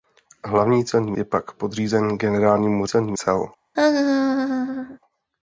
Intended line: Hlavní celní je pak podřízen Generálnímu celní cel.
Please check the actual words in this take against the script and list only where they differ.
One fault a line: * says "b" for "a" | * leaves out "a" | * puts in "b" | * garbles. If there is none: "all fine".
all fine